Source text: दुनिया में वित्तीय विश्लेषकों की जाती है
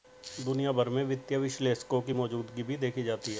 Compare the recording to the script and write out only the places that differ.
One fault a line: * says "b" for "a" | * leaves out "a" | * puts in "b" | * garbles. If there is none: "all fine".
* puts in "भर"
* puts in "मौजूदगी भी देखी"